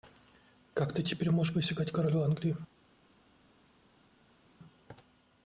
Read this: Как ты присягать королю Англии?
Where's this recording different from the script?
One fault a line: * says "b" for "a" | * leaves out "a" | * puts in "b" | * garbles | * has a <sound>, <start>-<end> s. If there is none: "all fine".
* puts in "теперь можешь"